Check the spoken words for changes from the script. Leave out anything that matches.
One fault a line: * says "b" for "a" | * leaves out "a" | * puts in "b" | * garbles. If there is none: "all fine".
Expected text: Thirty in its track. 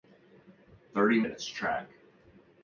all fine